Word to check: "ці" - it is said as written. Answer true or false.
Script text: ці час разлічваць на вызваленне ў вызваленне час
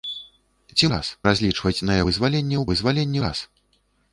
true